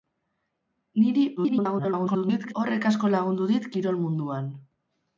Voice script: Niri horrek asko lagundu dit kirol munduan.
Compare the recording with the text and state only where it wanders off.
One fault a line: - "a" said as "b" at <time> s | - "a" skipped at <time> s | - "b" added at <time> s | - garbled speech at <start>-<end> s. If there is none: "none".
- garbled speech at 1.4-2.5 s